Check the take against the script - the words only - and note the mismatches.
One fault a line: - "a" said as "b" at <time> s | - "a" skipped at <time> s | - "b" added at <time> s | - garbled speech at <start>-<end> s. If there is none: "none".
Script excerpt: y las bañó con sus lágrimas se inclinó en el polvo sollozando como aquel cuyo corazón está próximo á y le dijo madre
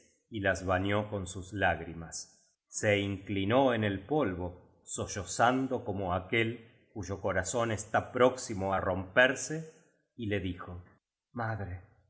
- "romperse" added at 8.8 s